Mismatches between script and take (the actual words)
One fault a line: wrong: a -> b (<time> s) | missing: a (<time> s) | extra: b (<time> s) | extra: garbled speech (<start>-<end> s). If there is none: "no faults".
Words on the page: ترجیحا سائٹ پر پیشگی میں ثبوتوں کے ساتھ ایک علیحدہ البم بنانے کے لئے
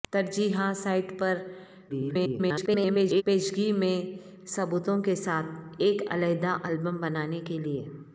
extra: garbled speech (1.9-3.2 s)